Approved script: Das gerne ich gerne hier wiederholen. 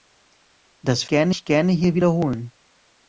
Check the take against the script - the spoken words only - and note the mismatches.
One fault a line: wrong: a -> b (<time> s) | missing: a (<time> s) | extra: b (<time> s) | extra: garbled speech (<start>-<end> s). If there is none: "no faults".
no faults